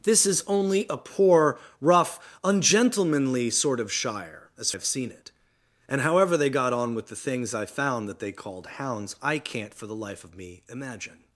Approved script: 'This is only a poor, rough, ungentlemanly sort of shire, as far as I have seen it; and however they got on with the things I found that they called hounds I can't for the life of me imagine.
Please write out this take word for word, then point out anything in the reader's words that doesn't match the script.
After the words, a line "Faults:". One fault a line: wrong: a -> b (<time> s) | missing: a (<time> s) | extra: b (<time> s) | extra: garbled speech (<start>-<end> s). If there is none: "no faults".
'This is only a poor, rough, ungentlemanly sort of shire, as have seen it; and however they got on with the things I found that they called hounds I can't for the life of me imagine.
Faults:
missing: far as I (4.7 s)